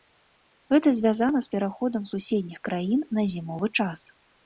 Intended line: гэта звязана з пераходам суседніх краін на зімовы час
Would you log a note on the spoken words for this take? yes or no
no